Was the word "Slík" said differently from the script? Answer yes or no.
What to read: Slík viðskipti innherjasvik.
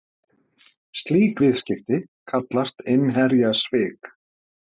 no